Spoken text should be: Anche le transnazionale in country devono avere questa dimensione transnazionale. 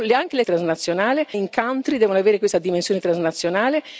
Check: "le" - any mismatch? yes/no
no